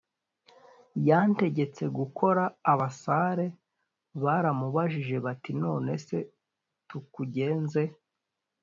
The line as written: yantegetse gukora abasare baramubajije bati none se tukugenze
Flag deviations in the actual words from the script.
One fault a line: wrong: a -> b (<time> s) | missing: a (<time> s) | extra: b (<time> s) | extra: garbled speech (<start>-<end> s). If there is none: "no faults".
no faults